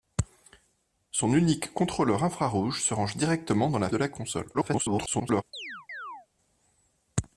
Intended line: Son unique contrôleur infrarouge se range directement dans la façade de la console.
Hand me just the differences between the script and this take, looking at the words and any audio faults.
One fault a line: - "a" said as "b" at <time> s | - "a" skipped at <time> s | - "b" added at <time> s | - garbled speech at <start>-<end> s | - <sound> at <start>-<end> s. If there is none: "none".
- "façade" skipped at 3.9 s
- garbled speech at 4.5-5.4 s
- chirp at 5.5-6.3 s